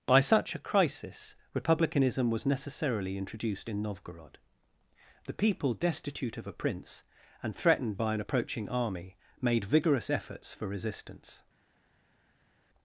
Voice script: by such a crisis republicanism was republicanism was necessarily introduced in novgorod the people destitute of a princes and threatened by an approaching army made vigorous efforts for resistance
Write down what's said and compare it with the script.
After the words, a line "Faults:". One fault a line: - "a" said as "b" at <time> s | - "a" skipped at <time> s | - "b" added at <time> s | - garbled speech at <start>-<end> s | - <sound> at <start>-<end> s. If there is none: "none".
by such a crisis republicanism was necessarily introduced in novgorod the people destitute of a prince and threatened by an approaching army made vigorous efforts for resistance
Faults:
- "republicanism was" skipped at 2.5 s
- "princes" said as "prince" at 6.5 s